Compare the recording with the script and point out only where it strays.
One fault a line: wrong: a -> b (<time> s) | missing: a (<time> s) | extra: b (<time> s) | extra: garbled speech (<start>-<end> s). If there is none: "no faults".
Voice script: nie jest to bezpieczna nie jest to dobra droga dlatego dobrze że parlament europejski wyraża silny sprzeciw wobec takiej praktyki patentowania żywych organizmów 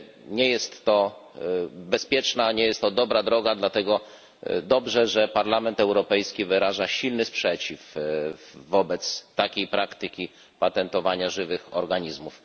no faults